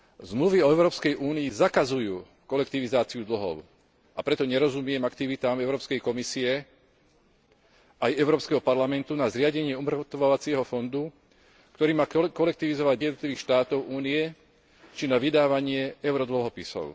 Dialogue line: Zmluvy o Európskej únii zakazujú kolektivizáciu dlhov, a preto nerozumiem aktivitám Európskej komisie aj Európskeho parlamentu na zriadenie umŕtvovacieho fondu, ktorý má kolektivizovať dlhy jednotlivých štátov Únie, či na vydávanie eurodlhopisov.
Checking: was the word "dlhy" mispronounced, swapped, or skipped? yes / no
yes